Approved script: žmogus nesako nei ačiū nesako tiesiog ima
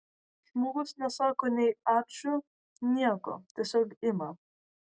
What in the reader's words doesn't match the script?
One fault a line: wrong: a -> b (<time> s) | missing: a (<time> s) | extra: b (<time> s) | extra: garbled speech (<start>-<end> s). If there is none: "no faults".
wrong: nesako -> nieko (3.0 s)